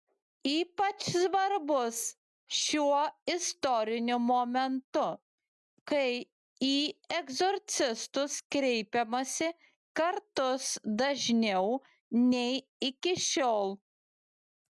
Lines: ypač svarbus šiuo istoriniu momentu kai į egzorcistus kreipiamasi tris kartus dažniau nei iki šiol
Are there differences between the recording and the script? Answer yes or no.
yes